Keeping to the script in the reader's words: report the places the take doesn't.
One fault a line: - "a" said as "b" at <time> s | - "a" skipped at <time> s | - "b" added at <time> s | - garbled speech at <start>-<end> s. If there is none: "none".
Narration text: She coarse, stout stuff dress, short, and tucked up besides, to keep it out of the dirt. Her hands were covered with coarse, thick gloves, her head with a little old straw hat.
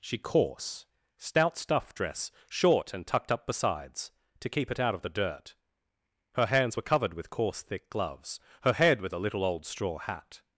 none